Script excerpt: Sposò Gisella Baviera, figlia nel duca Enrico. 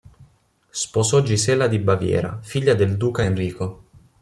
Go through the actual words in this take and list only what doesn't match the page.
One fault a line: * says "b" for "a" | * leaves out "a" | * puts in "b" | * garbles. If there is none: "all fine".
* puts in "di"
* says "del" for "nel"